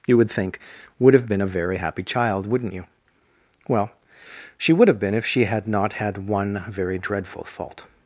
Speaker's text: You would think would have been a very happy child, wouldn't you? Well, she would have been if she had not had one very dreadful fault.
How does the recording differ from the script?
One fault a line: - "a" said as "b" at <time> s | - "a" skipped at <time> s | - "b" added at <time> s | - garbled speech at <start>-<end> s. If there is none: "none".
none